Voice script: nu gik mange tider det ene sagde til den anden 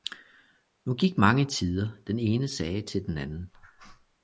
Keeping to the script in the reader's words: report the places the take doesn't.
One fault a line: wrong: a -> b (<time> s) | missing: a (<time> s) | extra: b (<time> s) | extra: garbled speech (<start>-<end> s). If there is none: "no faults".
wrong: det -> den (2.1 s)